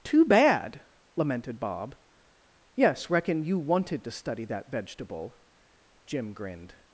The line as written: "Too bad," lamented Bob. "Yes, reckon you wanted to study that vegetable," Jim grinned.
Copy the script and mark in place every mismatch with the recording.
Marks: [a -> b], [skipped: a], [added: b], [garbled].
"Too bad," lamented Bob. "Yes, reckon you wanted to study that vegetable," Jim grinned.